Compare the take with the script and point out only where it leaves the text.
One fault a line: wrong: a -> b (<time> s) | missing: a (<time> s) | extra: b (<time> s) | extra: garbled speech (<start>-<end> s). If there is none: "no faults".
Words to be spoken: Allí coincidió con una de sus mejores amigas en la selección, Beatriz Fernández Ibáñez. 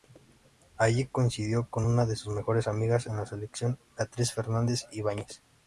no faults